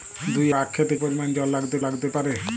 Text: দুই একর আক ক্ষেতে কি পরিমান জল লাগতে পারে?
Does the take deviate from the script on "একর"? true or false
true